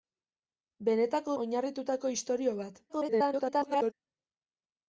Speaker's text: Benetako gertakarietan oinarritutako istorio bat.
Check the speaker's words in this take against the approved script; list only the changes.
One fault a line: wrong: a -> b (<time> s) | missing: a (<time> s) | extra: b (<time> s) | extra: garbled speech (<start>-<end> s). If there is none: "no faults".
missing: gertakarietan (1.4 s)
extra: garbled speech (2.9-3.9 s)